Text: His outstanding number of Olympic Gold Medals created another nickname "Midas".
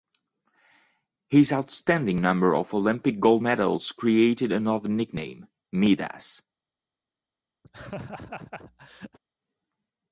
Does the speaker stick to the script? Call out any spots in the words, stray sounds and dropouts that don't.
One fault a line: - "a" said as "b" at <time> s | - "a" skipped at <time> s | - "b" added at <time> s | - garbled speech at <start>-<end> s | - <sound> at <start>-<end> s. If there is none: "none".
- laugh at 7.6-9.2 s